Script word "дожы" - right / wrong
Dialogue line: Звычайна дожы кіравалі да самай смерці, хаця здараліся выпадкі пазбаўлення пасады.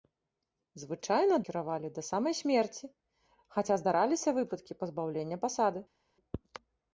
wrong